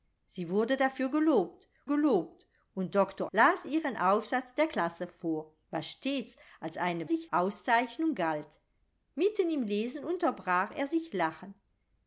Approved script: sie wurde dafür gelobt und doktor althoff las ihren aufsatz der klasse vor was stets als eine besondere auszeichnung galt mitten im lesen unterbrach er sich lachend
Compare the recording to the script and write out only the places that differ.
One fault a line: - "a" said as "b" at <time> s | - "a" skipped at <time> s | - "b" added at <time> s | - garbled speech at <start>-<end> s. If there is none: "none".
- "gelobt" added at 1.8 s
- "althoff" skipped at 3.3 s
- "besondere" said as "sich" at 7.0 s